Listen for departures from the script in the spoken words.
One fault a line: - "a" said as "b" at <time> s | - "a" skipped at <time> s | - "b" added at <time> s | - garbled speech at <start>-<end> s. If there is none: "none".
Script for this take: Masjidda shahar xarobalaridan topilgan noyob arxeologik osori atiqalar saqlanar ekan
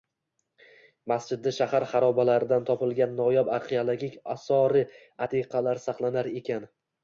none